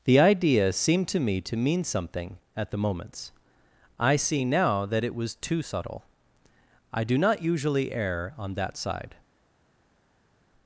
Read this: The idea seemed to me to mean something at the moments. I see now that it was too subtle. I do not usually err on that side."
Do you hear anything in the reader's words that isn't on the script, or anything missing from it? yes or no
no